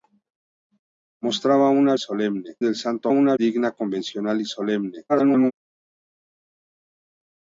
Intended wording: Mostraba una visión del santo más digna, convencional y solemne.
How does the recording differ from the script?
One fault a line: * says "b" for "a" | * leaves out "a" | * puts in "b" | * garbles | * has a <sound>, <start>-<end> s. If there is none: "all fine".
* says "solemne" for "visión"
* says "una" for "más"
* garbles